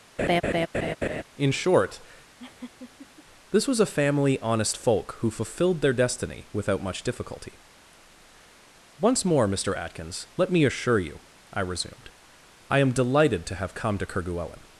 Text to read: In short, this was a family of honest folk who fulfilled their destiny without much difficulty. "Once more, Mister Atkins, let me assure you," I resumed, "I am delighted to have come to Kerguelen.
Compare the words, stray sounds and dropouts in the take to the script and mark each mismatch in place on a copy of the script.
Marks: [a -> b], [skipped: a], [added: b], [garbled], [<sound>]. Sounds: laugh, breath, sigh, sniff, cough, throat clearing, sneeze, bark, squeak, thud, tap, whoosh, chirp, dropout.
[laugh] In short, [laugh] this was a family [skipped: of] honest folk who fulfilled their destiny without much difficulty. "Once more, Mister Atkins, let me assure you," I resumed, "I am delighted to have come to Kerguelen.